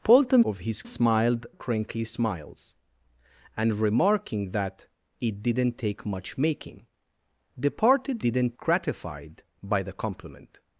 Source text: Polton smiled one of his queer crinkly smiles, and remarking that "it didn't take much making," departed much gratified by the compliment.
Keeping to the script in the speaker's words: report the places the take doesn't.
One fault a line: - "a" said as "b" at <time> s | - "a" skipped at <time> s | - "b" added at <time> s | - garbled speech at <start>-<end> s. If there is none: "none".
- "smiled one" skipped at 0.4 s
- "queer" said as "smiled" at 0.8 s
- "much" said as "didn't" at 8.2 s